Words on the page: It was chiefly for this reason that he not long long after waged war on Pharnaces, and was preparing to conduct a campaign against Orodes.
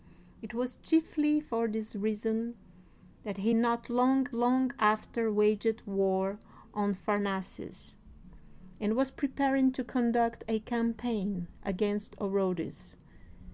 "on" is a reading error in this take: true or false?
false